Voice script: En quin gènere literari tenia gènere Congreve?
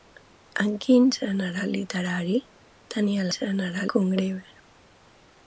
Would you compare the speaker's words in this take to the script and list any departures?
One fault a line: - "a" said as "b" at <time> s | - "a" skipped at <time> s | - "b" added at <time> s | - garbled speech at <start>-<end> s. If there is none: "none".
none